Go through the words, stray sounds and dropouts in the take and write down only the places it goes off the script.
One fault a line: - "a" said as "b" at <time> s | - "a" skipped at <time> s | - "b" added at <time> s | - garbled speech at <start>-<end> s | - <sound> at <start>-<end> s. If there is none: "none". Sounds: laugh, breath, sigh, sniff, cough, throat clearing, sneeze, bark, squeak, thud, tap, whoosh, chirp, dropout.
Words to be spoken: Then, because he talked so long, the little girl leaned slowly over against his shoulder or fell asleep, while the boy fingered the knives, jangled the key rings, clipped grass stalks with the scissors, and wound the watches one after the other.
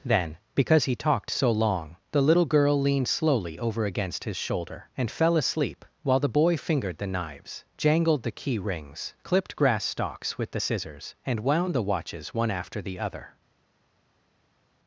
- "or" said as "and" at 5.0 s